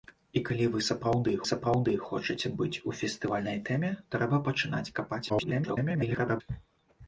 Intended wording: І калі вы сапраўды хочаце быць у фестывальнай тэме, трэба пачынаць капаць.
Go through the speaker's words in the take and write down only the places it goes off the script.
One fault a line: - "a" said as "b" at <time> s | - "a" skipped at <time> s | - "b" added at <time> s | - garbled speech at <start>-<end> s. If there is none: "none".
- "сапраўды" added at 1.5 s
- garbled speech at 5.3-6.4 s